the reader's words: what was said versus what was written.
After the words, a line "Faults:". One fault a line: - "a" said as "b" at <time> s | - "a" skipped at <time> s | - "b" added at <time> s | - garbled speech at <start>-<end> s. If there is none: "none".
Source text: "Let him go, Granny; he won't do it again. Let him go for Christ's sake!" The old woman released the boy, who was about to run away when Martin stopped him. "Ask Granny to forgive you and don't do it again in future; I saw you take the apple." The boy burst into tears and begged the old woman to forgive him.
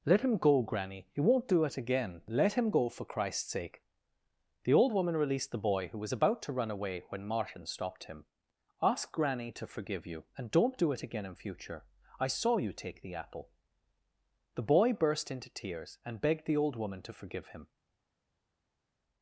"Let him go, Granny; he won't do it again. Let him go for Christ's sake!" The old woman released the boy, who was about to run away when Martin stopped him. "Ask Granny to forgive you and don't do it again in future; I saw you take the apple." The boy burst into tears and begged the old woman to forgive him.
Faults:
none